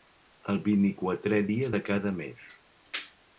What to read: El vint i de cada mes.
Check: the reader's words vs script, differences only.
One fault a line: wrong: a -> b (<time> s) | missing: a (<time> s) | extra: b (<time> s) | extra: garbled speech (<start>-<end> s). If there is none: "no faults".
extra: quatrè dia (1.0 s)